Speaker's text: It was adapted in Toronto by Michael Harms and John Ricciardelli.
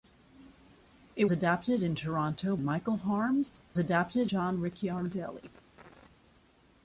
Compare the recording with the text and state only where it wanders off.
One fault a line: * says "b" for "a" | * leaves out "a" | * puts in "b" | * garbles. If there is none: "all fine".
* leaves out "was"
* leaves out "by"
* says "adapted" for "and"